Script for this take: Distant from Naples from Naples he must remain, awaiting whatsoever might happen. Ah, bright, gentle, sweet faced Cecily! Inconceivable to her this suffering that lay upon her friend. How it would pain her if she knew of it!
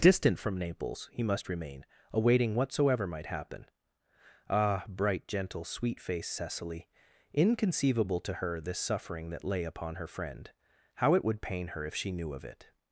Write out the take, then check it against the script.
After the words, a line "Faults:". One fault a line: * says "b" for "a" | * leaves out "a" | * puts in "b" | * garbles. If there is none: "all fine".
Distant from Naples he must remain, awaiting whatsoever might happen. Ah, bright, gentle, sweet faced Cecily! Inconceivable to her this suffering that lay upon her friend. How it would pain her if she knew of it!
Faults:
* leaves out "from Naples"